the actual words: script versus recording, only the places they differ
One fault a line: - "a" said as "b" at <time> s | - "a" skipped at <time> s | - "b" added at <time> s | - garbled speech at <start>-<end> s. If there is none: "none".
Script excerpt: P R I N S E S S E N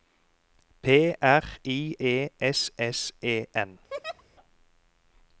- "N S" skipped at 1.9 s